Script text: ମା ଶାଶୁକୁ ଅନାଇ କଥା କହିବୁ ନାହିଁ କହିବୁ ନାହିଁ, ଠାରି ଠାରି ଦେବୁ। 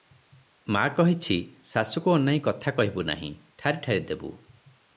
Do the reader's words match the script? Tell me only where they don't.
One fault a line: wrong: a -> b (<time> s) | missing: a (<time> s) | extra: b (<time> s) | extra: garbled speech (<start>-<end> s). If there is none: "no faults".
extra: କହିଛି (1.0 s)
missing: କହିବୁ ନାହିଁ (3.3 s)